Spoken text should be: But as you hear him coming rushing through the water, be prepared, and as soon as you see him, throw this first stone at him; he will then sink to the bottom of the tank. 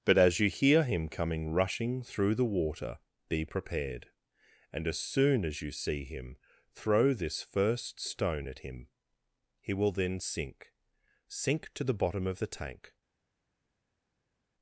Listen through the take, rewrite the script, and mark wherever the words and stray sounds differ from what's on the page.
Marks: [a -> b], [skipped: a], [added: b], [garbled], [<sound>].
But as you hear him coming rushing through the water, be prepared, and as soon as you see him, throw this first stone at him; he will then sink [added: sink] to the bottom of the tank.